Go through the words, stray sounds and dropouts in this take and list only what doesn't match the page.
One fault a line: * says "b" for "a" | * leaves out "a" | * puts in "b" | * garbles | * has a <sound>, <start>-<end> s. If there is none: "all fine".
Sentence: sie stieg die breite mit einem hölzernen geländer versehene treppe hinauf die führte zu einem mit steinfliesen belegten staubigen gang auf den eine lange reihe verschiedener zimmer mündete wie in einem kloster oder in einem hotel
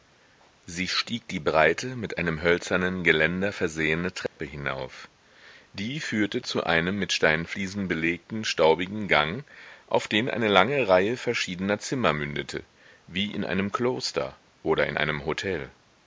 * has a dropout, 4.3-4.4 s